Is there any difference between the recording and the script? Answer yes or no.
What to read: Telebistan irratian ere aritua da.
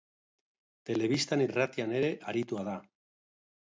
no